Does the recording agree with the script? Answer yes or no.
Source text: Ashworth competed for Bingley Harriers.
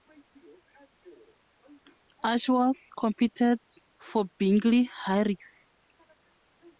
yes